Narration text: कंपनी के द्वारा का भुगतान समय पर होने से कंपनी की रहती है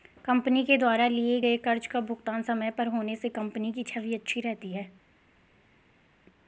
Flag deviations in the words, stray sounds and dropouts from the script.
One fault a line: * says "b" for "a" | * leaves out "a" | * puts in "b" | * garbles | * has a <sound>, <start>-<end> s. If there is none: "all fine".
* puts in "लिए गए कर्ज"
* puts in "छवि अच्छी"